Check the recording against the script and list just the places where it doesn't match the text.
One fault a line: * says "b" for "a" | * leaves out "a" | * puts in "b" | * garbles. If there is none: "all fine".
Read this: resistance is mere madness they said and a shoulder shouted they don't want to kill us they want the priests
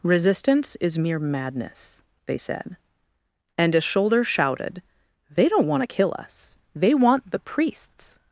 all fine